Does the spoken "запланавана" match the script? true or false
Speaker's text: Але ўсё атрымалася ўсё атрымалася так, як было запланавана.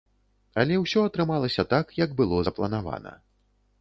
true